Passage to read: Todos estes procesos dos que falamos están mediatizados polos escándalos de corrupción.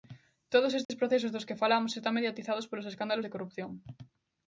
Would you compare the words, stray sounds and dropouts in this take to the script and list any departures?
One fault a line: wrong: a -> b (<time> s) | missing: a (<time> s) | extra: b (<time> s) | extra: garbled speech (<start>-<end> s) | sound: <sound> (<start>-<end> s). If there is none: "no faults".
sound: dropout (0.8-0.9 s)